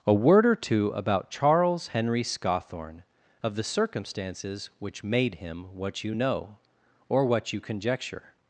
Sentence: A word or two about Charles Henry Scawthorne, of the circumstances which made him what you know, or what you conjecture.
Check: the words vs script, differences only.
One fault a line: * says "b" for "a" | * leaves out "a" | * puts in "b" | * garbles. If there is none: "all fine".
all fine